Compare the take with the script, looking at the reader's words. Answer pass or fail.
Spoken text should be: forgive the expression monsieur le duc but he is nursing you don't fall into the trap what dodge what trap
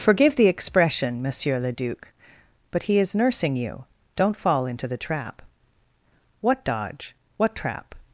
pass